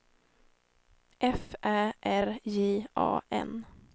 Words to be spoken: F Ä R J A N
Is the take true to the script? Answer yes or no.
yes